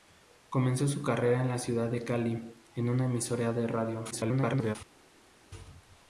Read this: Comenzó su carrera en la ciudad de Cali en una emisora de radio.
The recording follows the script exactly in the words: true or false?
false